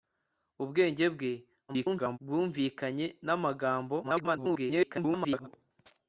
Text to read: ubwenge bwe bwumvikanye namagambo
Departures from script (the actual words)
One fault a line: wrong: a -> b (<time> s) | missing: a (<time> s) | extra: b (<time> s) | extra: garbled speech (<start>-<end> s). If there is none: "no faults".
extra: garbled speech (1.7-2.2 s)
extra: garbled speech (4.0-5.5 s)